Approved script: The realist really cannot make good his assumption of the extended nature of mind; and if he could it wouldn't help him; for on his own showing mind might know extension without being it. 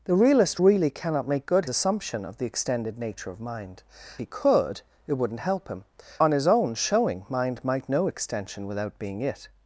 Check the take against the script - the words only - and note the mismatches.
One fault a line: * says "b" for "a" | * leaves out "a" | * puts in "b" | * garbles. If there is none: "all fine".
* leaves out "his"
* leaves out "and if"
* leaves out "for"